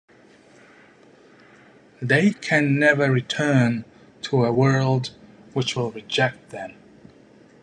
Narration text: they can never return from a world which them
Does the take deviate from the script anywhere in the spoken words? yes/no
yes